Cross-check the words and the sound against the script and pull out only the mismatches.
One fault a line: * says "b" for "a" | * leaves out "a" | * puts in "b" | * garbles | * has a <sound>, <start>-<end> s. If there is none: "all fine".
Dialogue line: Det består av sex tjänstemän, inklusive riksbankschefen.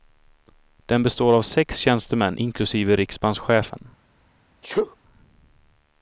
* says "Den" for "Det"
* has a sneeze, 4.6-5.0 s